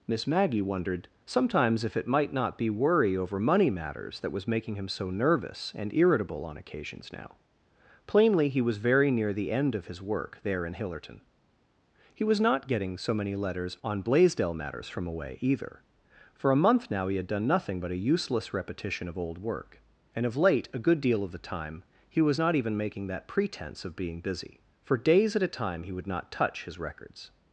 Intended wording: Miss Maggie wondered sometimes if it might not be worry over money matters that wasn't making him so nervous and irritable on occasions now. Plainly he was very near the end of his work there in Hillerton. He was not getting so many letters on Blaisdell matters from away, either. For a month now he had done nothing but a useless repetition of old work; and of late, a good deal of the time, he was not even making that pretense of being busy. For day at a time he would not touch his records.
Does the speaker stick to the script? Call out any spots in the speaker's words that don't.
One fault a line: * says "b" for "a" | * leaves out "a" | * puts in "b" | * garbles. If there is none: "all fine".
* says "was" for "wasn't"
* says "days" for "day"